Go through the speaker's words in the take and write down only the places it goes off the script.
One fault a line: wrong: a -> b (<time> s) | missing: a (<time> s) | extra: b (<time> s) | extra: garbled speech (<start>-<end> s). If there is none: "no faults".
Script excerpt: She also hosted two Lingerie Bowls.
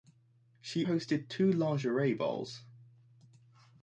missing: also (0.8 s)